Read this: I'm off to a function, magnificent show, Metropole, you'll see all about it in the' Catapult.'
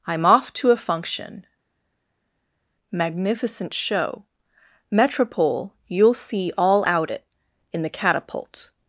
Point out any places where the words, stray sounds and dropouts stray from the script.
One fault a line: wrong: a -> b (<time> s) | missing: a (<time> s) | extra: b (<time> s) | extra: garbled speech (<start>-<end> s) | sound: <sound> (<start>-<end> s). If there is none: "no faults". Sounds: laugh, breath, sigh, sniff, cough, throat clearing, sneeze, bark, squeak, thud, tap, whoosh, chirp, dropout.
wrong: about -> out (6.9 s)